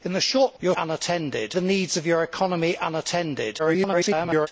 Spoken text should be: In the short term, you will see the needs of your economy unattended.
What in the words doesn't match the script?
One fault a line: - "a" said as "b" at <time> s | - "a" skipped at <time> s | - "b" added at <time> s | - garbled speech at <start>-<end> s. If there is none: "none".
- "term" skipped at 0.6 s
- "see" said as "unattended" at 0.8 s
- garbled speech at 3.6-4.5 s